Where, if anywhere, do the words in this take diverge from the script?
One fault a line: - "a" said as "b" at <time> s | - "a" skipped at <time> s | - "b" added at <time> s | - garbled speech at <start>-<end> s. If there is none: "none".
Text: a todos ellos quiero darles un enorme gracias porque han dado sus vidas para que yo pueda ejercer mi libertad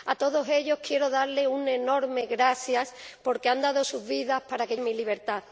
- "yo pueda ejercer" skipped at 4.8 s